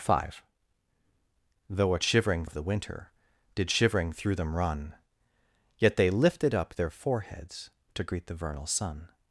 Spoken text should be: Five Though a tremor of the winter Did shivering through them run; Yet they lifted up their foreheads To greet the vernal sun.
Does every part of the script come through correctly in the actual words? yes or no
no